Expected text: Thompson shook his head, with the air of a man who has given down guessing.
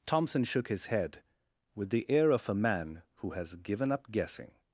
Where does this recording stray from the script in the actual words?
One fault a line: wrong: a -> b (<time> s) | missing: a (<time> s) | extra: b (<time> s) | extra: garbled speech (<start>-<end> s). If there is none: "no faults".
wrong: down -> up (3.9 s)